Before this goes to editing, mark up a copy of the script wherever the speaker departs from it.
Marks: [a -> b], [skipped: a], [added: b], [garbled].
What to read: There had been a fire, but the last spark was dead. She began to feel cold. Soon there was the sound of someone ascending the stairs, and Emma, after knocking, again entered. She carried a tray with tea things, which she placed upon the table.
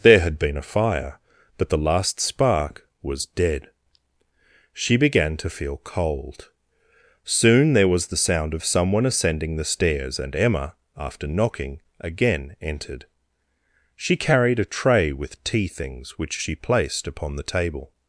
There had been a fire, but the last spark was dead. She began to feel cold. Soon there was the sound of someone ascending the stairs, and Emma, after knocking, again entered. She carried a tray with tea things, which she placed upon the table.